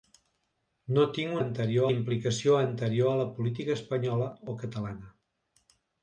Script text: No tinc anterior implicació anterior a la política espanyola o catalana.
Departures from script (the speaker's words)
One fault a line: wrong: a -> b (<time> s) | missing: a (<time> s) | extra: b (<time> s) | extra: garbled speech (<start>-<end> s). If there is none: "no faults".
no faults